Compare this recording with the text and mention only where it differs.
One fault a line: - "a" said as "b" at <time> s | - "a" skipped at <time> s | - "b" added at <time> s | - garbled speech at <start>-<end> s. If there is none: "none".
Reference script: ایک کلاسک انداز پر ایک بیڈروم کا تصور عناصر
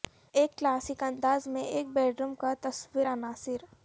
- "پر" said as "میں" at 1.5 s